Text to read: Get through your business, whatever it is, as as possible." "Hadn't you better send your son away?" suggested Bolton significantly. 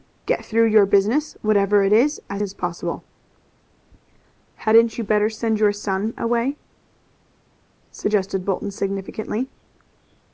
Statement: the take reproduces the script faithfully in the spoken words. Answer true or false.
true